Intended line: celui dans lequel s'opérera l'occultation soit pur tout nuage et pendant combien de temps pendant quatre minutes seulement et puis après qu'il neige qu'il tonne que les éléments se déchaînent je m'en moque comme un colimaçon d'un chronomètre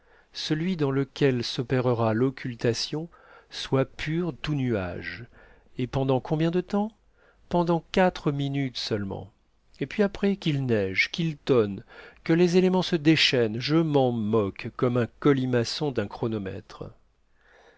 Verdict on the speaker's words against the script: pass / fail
pass